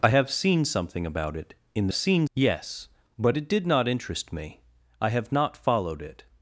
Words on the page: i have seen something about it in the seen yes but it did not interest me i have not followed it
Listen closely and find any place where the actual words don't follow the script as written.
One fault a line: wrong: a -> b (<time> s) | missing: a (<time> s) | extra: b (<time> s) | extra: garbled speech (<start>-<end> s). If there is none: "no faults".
no faults